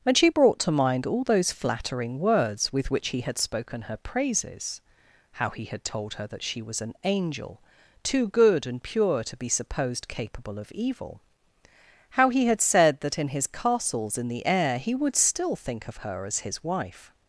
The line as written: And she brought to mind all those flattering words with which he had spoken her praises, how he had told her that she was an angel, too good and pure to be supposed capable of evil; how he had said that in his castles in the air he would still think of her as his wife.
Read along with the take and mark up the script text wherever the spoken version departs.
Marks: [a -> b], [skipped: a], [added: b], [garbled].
And she brought to mind all those flattering words with which he had spoken her praises, how he had told her that she was an angel, too good and pure to be supposed capable of evil; how he had said that in his castles in the air he would still think of her as his wife.